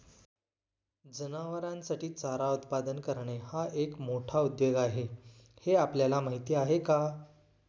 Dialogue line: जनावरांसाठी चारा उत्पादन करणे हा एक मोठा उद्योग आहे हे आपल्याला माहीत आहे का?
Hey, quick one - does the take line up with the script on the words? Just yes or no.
yes